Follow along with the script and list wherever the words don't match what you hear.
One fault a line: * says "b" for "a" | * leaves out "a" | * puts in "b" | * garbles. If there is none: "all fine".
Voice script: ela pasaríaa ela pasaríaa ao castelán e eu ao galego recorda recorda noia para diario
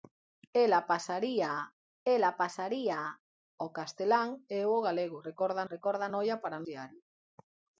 all fine